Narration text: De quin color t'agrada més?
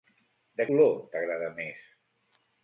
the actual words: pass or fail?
fail